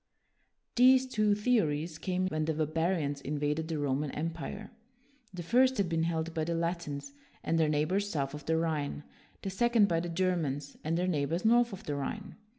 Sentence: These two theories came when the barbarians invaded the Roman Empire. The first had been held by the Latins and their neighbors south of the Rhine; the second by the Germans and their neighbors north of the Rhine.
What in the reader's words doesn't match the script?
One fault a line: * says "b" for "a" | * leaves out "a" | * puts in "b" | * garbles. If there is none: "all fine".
all fine